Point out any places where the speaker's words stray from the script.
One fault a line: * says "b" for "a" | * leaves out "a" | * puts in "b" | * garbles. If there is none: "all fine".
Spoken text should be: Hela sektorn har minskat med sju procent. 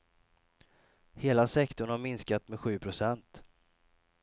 all fine